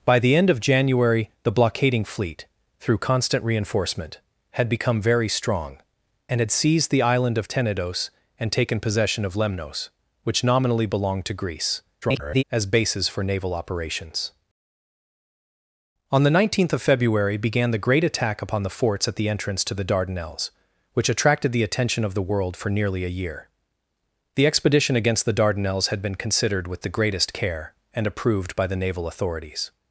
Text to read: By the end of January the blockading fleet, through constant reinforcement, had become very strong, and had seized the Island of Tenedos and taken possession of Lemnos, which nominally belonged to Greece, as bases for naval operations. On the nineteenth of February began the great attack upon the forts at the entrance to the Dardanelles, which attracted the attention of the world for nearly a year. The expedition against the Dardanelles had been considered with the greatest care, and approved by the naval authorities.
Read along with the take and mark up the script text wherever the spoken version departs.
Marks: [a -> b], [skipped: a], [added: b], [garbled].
By the end of January the blockading fleet, through constant reinforcement, had become very strong, and had seized the Island of Tenedos and taken possession of Lemnos, which nominally belonged to Greece, [garbled] as bases for naval operations. On the nineteenth of February began the great attack upon the forts at the entrance to the Dardanelles, which attracted the attention of the world for nearly a year. The expedition against the Dardanelles had been considered with the greatest care, and approved by the naval authorities.